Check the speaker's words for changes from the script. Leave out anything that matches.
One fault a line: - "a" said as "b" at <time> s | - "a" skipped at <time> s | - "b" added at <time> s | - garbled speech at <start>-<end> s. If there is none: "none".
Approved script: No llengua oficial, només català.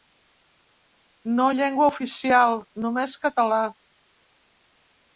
none